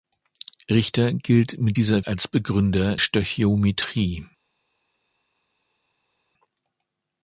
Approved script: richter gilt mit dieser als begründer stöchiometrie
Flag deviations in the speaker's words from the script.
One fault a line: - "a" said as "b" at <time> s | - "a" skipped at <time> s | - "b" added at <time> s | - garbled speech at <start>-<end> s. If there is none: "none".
none